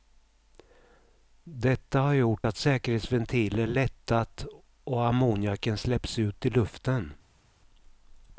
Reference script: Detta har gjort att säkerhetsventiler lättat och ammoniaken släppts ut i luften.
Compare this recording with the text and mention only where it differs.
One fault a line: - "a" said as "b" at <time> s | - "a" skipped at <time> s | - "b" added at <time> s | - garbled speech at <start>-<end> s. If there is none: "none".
none